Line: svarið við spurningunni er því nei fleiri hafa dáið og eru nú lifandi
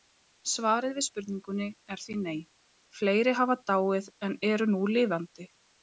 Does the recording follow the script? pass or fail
fail